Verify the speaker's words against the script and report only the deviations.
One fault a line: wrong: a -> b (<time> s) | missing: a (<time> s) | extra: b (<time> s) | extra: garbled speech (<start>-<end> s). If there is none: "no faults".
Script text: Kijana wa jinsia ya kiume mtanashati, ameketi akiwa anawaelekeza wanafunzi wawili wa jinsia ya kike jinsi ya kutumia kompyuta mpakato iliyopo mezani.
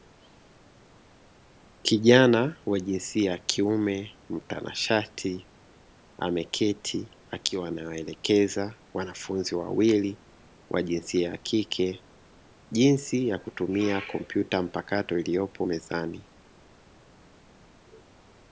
no faults